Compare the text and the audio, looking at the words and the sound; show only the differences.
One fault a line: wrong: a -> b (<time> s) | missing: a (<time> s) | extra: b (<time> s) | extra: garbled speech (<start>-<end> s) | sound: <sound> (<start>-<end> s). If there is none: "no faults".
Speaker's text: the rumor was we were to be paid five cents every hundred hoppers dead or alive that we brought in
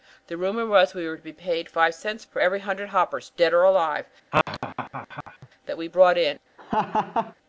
extra: for (2.2 s)
sound: laugh (4.3-5.5 s)
sound: laugh (6.6-7.3 s)